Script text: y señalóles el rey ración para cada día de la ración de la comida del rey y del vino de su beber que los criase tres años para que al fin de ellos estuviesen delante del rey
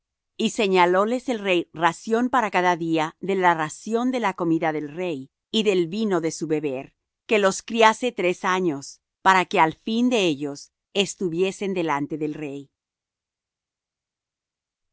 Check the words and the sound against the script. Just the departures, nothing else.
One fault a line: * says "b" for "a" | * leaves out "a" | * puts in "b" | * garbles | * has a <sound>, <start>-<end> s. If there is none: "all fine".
all fine